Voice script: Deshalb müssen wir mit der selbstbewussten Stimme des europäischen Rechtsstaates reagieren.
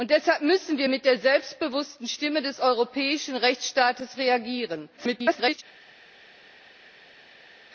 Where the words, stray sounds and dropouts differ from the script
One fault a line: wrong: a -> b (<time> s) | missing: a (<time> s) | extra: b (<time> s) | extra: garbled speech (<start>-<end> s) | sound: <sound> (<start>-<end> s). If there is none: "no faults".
extra: garbled speech (5.0-5.6 s)